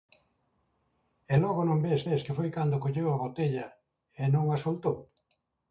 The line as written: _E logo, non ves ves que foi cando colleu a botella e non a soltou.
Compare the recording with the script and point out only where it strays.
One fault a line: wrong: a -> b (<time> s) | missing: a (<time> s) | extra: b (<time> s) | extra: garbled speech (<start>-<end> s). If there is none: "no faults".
no faults